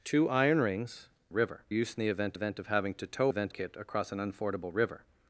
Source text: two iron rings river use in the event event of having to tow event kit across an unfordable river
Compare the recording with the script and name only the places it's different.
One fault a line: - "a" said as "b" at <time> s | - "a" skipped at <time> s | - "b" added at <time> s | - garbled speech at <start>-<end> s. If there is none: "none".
none